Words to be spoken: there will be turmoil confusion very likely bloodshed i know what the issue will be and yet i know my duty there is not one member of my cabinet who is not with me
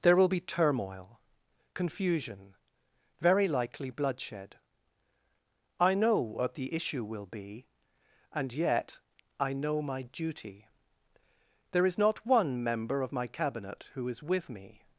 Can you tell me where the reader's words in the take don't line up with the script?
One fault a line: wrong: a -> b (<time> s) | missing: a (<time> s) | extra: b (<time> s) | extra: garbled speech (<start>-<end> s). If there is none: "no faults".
missing: not (14.2 s)